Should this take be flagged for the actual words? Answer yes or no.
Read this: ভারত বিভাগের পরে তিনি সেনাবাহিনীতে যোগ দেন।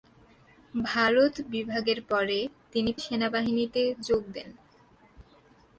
no